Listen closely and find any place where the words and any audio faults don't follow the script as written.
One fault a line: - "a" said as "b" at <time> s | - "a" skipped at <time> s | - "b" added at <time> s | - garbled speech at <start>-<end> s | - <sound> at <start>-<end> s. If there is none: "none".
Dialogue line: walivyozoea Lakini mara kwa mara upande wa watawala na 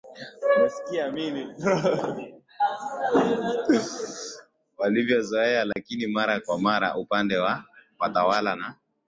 - dropout at 5.7-5.8 s